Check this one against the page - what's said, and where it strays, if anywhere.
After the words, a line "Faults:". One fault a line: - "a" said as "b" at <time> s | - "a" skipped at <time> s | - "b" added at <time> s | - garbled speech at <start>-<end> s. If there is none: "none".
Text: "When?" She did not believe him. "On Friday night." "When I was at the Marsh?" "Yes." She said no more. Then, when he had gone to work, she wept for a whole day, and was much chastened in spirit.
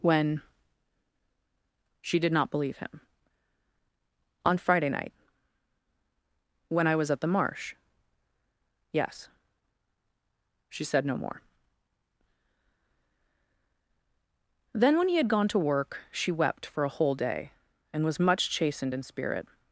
"When?" She did not believe him. "On Friday night." "When I was at the Marsh?" "Yes." She said no more. Then, when he had gone to work, she wept for a whole day, and was much chastened in spirit.
Faults:
none